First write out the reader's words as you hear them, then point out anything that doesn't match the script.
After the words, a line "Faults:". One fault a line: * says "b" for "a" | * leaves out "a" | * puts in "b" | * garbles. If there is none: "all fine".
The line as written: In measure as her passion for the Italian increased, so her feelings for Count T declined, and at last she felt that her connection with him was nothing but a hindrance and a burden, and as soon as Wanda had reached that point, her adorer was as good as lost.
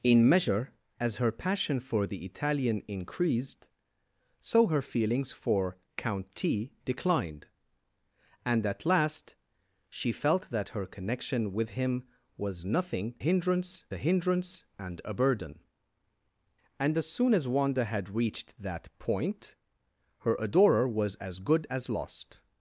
In measure as her passion for the Italian increased, so her feelings for Count T declined, and at last she felt that her connection with him was nothing hindrance a hindrance and a burden, and as soon as Wanda had reached that point, her adorer was as good as lost.
Faults:
* says "hindrance" for "but"